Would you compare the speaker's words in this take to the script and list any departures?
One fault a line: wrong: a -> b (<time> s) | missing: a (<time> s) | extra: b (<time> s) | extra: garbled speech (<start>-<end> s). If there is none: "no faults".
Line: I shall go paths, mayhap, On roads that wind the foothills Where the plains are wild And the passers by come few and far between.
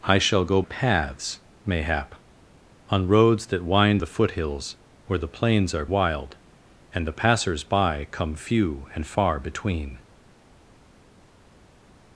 no faults